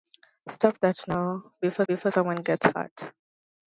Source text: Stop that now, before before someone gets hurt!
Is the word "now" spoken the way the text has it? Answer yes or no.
yes